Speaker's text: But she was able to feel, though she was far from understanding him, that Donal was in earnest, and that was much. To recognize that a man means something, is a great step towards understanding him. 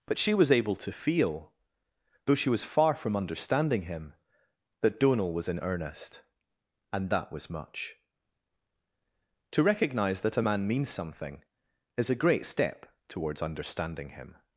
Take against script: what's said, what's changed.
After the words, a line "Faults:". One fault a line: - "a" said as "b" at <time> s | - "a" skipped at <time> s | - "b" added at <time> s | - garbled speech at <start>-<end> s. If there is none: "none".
But she was able to feel, though she was far from understanding him, that Donal was in earnest, and that was much. To recognize that a man means something, is a great step towards understanding him.
Faults:
none